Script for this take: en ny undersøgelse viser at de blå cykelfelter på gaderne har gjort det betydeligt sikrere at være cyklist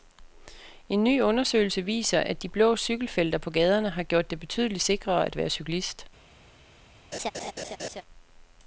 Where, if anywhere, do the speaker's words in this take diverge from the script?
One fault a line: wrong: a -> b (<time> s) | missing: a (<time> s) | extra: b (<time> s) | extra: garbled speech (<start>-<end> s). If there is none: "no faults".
no faults